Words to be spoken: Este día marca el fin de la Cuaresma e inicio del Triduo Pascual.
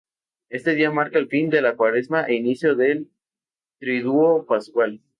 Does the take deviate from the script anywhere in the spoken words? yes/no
no